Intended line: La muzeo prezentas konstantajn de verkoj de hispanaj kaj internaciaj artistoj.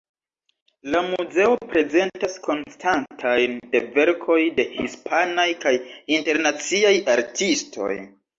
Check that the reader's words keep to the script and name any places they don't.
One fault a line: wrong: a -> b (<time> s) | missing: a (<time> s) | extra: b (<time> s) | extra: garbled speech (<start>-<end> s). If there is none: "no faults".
no faults